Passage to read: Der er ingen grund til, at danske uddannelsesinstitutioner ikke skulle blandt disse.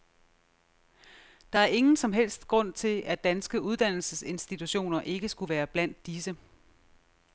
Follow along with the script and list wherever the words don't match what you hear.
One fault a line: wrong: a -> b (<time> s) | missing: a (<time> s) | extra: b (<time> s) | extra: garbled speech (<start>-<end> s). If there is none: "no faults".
extra: som helst (2.0 s)
extra: være (5.5 s)